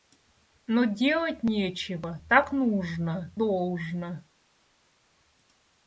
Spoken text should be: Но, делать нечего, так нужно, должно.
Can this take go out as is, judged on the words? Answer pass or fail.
pass